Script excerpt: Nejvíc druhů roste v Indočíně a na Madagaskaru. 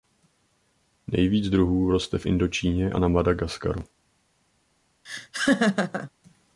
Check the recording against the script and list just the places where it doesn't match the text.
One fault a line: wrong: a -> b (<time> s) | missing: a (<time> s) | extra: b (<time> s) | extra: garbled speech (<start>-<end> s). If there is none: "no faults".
no faults